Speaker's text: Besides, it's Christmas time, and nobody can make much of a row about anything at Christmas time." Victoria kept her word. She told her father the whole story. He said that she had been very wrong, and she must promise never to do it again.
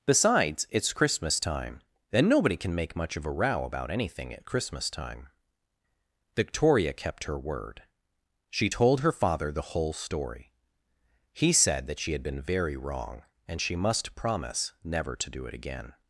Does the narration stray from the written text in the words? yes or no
no